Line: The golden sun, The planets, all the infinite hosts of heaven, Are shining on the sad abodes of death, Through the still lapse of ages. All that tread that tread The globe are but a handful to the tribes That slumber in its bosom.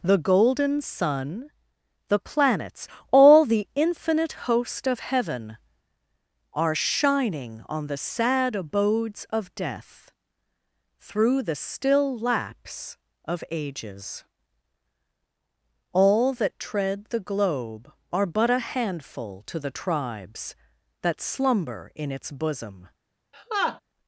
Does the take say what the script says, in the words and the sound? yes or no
no